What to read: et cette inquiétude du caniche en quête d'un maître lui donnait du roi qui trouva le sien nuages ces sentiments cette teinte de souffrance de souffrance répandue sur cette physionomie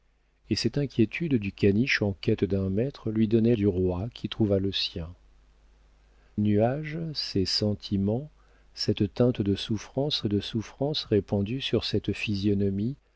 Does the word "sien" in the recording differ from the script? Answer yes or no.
no